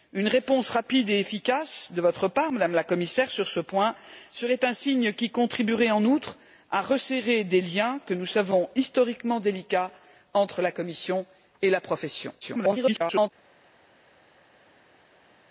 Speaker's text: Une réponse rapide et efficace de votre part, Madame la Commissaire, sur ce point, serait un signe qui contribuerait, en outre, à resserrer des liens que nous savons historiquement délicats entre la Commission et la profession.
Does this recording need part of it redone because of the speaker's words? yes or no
yes